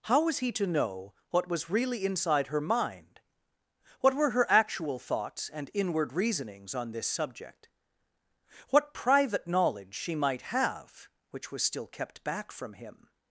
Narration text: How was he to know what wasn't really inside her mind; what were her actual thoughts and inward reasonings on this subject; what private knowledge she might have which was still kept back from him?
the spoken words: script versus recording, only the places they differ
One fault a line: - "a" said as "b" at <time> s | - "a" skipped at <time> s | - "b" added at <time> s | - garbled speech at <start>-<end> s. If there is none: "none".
- "wasn't" said as "was" at 1.5 s